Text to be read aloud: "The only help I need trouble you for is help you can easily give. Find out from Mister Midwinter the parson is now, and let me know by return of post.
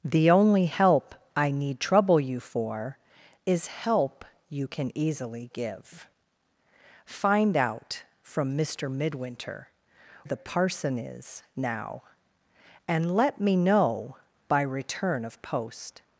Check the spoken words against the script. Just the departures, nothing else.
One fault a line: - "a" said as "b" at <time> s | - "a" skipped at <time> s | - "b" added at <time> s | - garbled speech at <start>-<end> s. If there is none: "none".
none